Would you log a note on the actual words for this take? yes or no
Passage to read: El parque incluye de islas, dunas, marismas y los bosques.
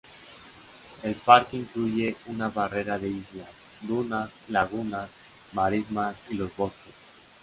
yes